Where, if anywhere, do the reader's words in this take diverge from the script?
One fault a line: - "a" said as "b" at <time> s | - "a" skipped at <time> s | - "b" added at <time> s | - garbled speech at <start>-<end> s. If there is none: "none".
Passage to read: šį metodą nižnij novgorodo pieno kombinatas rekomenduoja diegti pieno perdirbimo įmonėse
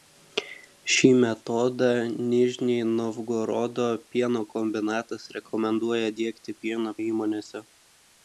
- "perdirbimo" skipped at 6.9 s